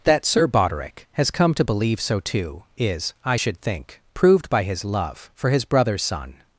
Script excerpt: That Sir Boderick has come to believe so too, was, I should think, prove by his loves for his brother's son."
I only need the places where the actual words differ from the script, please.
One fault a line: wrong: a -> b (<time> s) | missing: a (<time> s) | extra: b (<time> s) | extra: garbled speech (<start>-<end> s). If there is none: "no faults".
wrong: was -> is (2.8 s)
wrong: prove -> proved (4.1 s)
wrong: loves -> love (4.8 s)